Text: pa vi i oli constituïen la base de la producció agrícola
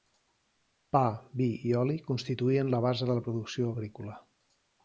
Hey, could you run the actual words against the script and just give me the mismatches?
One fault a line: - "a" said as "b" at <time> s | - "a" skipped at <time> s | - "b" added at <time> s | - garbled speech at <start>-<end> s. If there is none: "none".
none